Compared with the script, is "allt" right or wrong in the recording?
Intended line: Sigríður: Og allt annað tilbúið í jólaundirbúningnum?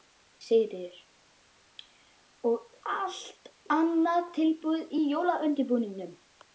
right